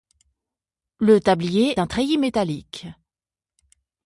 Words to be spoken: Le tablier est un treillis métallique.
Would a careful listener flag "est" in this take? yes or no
yes